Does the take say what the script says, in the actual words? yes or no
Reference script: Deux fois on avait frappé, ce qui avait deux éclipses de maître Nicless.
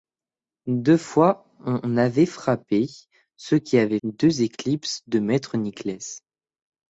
yes